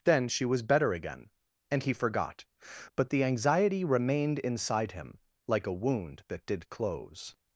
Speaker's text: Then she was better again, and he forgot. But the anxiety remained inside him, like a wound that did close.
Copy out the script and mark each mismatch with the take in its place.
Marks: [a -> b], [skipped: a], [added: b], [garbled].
Then she was better again, and he forgot. But the anxiety remained inside him, like a wound that did close.